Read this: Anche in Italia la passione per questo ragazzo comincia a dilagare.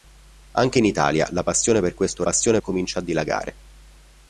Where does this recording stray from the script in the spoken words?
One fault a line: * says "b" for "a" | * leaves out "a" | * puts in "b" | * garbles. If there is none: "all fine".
* says "passione" for "ragazzo"